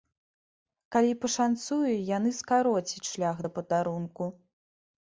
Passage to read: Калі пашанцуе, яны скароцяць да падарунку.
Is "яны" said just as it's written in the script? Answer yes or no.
yes